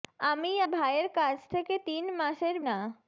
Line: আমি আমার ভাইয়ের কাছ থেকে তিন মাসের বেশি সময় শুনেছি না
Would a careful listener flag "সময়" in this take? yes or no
yes